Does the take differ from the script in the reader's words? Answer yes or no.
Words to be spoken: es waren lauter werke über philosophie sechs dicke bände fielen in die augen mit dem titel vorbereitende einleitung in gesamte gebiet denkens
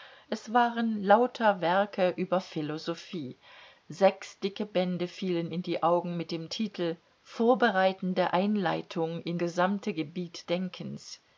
no